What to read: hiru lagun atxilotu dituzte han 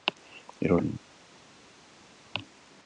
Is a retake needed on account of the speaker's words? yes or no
yes